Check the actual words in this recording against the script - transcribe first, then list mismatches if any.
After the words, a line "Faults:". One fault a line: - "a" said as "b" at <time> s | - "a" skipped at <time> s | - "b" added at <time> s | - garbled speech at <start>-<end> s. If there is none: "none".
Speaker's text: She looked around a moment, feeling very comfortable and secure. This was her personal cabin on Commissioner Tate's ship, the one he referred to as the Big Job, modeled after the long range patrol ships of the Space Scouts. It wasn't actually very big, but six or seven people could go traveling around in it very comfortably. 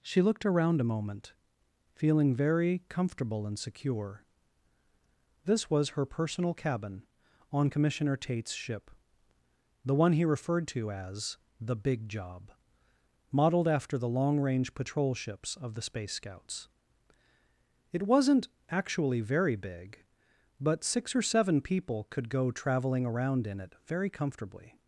She looked around a moment, feeling very comfortable and secure. This was her personal cabin on Commissioner Tate's ship, the one he referred to as the Big Job, modeled after the long range patrol ships of the Space Scouts. It wasn't actually very big, but six or seven people could go traveling around in it very comfortably.
Faults:
none